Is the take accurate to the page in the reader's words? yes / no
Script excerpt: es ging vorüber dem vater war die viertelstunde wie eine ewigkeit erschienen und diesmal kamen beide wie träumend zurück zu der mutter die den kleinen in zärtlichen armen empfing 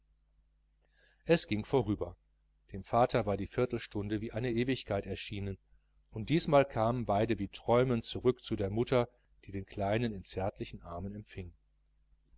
yes